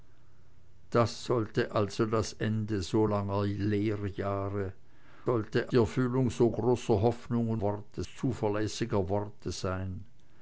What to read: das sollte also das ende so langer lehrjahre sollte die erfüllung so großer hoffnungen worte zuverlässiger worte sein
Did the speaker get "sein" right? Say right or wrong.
right